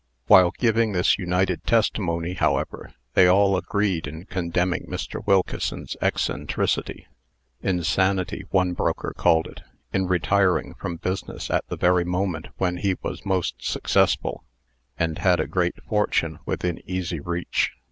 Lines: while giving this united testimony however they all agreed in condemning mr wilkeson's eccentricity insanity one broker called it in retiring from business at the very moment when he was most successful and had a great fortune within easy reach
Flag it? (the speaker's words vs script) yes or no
no